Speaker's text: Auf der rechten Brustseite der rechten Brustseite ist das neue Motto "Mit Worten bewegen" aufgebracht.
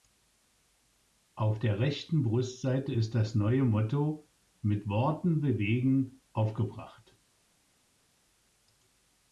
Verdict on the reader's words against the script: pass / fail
fail